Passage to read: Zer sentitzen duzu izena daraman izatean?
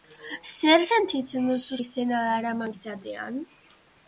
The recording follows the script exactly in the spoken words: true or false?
true